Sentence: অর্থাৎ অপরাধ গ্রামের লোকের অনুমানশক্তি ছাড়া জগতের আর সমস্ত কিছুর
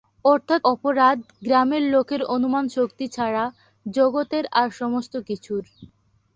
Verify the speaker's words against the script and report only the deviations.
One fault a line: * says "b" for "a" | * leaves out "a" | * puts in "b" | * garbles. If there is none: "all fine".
all fine